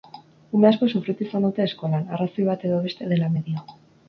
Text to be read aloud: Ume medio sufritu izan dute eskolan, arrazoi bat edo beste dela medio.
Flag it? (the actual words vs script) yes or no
yes